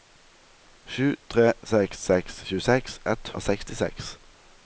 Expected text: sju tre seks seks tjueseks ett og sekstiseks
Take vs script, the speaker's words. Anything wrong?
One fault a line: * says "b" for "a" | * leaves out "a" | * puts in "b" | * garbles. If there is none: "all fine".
all fine